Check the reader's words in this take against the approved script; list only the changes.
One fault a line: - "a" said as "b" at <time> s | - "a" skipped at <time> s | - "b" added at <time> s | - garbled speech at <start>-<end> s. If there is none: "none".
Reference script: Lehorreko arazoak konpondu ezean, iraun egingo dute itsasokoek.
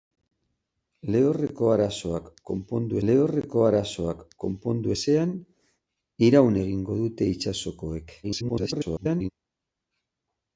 - "lehorreko arazoak konpondu" added at 3.1 s
- garbled speech at 8.2-9.3 s